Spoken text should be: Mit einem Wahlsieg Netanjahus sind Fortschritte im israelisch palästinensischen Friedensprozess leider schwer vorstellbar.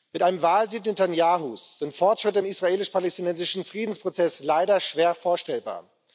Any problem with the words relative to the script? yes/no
no